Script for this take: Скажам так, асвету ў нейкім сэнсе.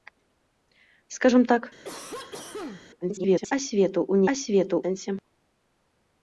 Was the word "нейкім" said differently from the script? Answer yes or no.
yes